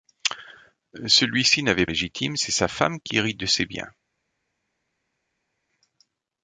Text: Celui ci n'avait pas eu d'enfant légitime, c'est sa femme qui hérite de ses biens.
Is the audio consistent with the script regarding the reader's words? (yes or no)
no